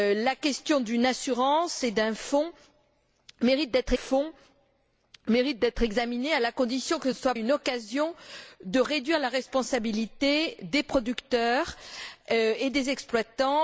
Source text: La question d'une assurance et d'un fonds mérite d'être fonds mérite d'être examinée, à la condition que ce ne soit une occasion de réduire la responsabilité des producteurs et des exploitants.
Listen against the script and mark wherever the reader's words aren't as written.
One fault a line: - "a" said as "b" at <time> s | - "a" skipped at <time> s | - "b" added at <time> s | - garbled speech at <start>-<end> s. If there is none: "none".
none